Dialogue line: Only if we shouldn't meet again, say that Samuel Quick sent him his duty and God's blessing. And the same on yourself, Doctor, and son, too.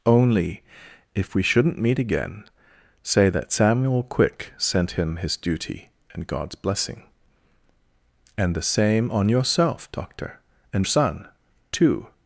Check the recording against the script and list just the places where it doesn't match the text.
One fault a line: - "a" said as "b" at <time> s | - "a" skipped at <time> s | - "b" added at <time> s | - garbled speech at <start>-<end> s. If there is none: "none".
none